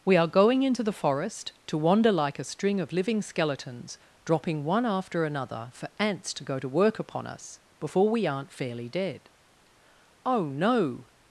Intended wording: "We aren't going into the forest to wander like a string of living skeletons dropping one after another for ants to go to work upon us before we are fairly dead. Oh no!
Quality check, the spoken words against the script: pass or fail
fail